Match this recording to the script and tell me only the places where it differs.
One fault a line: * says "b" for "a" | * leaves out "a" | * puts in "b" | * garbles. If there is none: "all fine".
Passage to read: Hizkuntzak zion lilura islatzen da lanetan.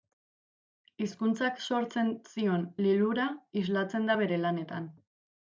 * puts in "sortzen"
* puts in "bere"